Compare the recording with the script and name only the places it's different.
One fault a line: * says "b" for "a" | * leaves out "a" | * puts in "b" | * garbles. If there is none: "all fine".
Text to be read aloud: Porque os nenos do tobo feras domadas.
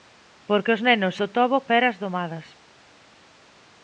all fine